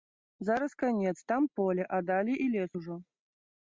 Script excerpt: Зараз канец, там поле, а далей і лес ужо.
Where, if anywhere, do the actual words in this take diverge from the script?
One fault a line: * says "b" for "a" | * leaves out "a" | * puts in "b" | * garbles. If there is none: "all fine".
all fine